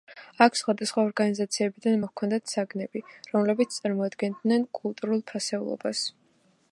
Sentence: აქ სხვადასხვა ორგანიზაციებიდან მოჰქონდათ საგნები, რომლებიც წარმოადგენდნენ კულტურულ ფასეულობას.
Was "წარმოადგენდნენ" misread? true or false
false